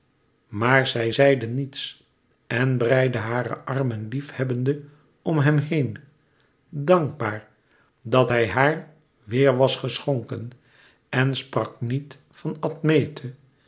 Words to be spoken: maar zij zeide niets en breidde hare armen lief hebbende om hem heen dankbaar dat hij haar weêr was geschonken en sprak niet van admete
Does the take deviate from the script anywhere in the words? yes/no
no